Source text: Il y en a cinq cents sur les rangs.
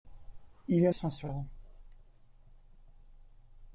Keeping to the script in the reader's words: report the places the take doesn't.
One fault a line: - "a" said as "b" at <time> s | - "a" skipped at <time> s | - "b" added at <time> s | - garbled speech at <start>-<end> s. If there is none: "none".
- "a cinq" skipped at 0.9 s
- "les" skipped at 1.3 s